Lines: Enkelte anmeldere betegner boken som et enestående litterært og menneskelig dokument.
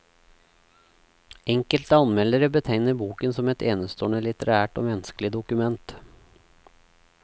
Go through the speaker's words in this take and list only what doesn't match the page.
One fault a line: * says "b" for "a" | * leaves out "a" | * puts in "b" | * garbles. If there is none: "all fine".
all fine